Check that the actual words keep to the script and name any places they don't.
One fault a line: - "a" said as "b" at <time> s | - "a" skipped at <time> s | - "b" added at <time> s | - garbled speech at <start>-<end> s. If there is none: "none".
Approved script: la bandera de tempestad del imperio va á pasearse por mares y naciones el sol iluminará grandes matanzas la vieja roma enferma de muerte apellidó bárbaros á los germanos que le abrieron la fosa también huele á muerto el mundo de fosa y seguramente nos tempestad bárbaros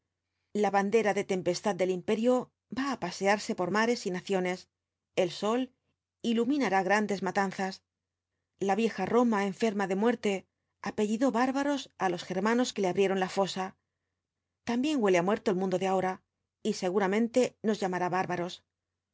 - "fosa" said as "ahora" at 15.9 s
- "tempestad" said as "llamará" at 17.8 s